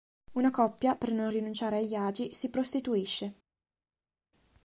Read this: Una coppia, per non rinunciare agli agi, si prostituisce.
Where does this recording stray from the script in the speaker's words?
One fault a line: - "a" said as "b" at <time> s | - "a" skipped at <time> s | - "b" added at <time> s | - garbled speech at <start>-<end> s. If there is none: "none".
none